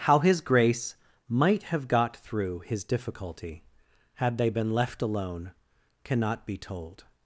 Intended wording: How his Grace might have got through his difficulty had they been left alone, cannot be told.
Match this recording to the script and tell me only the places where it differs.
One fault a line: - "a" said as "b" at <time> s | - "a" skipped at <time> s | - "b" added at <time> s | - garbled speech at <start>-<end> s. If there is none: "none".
none